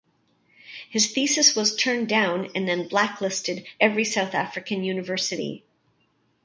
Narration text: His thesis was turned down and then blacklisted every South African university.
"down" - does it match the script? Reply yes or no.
yes